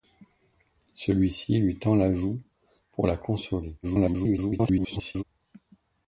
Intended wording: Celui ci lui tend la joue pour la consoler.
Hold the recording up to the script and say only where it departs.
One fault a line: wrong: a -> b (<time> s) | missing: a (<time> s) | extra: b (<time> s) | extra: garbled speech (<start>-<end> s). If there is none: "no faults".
extra: garbled speech (3.8-5.2 s)